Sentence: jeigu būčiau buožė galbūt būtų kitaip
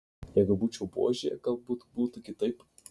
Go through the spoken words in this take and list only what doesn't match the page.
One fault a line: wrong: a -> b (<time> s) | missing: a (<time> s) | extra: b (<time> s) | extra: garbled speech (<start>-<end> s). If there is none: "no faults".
no faults